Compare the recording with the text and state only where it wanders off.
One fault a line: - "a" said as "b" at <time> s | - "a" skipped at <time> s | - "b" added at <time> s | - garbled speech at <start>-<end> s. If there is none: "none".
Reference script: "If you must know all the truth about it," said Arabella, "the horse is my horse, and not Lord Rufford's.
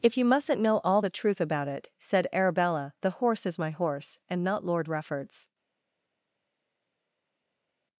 - "must" said as "mustn't" at 0.2 s